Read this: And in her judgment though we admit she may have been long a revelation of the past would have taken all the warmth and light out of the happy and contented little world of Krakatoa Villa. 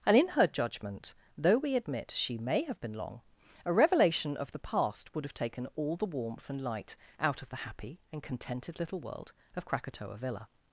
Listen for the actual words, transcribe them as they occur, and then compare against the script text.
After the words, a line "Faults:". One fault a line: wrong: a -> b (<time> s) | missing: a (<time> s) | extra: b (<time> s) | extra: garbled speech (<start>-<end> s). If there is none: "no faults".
And in her judgment though we admit she may have been long a revelation of the past would have taken all the warmth and light out of the happy and contented little world of Krakatoa Villa.
Faults:
no faults